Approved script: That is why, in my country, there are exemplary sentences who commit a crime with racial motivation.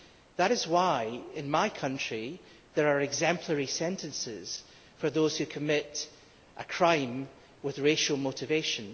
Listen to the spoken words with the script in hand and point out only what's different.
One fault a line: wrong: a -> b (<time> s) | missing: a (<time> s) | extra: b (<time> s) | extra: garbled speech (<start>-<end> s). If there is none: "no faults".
extra: for those (5.0 s)